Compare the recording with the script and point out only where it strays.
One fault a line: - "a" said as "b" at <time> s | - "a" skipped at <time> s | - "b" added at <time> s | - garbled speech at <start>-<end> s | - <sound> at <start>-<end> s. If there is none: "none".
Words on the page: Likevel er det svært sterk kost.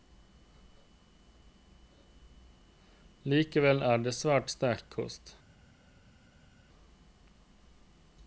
none